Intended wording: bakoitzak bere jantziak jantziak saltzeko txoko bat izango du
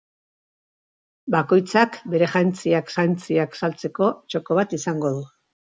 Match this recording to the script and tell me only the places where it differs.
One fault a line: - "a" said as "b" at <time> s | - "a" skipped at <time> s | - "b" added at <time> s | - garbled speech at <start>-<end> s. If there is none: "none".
none